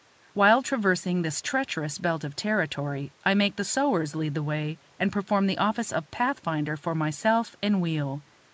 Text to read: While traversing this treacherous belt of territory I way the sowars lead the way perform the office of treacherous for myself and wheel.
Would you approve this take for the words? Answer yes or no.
no